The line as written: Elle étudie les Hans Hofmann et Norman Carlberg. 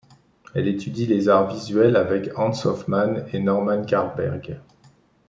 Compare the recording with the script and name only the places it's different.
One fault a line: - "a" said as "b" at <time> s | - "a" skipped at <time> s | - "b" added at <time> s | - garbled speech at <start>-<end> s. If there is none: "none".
- "arts visuels avec" added at 1.3 s